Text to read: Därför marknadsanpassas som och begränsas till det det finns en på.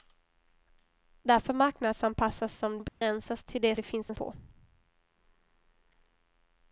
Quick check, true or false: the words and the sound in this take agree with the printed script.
false